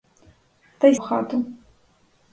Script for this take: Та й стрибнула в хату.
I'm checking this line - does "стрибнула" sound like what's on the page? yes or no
no